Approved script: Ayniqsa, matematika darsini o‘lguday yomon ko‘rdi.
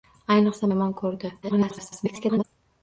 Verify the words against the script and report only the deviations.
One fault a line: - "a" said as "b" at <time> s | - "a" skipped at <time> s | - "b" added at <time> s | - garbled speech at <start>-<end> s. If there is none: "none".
- "matematika darsini o‘lguday" skipped at 0.7 s
- garbled speech at 1.4-2.4 s